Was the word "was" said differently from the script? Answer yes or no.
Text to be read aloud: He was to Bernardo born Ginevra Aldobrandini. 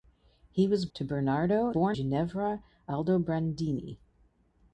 no